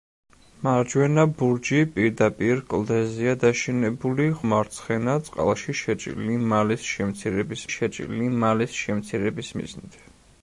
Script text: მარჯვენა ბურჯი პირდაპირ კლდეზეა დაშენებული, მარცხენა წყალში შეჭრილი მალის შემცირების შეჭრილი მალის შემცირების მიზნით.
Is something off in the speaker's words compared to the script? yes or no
no